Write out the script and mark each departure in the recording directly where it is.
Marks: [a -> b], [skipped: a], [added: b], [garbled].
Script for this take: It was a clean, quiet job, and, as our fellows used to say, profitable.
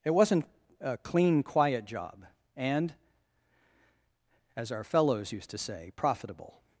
It [was -> wasn't] a clean, quiet job, and, as our fellows used to say, profitable.